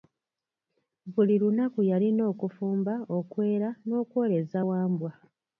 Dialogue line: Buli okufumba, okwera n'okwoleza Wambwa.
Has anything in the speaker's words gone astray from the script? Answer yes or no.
yes